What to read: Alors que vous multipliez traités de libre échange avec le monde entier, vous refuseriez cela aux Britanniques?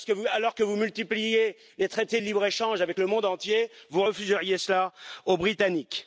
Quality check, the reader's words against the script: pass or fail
fail